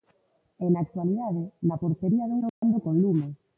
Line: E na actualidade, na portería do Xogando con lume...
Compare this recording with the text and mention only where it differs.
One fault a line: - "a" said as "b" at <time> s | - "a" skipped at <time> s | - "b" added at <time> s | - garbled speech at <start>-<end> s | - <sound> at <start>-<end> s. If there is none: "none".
- dropout at 2.5-2.6 s